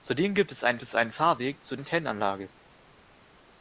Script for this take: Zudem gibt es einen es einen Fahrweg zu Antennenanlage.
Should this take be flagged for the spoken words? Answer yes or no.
no